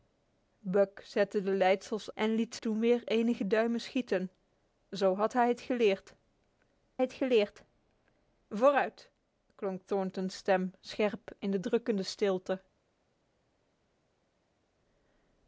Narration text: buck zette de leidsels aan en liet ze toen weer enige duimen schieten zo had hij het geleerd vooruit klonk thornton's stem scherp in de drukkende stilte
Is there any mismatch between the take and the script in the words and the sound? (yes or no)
yes